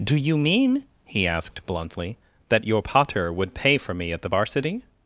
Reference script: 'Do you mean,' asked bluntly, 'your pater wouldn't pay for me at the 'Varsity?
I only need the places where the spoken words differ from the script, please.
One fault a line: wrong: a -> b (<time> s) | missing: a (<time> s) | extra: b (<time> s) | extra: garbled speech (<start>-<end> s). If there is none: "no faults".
extra: he (1.1 s)
extra: that (2.5 s)
wrong: wouldn't -> would (3.3 s)